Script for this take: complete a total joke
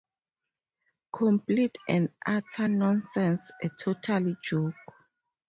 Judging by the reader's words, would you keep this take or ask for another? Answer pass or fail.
fail